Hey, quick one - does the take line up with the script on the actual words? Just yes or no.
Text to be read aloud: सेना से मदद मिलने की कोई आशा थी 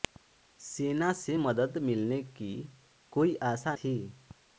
yes